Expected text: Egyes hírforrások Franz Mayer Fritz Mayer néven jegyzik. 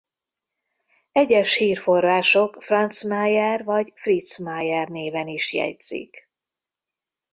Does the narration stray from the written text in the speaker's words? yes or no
yes